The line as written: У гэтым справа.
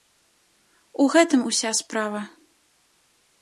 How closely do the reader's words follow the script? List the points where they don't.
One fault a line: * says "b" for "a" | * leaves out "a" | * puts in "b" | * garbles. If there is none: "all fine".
* puts in "уся"